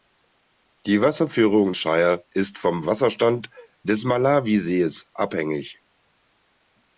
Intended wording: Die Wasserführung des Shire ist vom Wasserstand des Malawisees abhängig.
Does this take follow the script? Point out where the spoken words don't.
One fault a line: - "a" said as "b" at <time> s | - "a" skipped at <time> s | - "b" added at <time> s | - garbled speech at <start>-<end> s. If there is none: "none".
- "des" skipped at 1.7 s